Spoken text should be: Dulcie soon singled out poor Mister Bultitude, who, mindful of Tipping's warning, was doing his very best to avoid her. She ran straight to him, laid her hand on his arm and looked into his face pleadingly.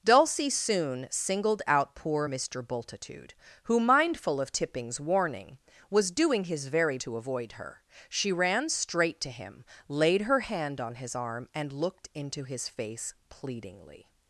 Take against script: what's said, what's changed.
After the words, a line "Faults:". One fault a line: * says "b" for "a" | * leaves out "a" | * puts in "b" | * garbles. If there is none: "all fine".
Dulcie soon singled out poor Mister Bultitude, who, mindful of Tipping's warning, was doing his very to avoid her. She ran straight to him, laid her hand on his arm and looked into his face pleadingly.
Faults:
* leaves out "best"